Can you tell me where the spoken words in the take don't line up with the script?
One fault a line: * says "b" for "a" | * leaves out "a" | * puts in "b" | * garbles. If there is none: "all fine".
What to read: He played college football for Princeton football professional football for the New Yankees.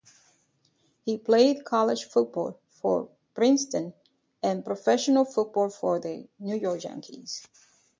* says "and" for "football"
* puts in "York"